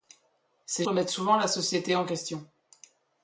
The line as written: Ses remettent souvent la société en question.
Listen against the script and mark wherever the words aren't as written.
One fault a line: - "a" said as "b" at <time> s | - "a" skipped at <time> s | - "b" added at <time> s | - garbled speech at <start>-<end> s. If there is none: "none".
none